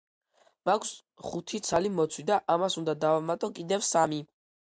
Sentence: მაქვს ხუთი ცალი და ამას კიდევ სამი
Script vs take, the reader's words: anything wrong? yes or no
yes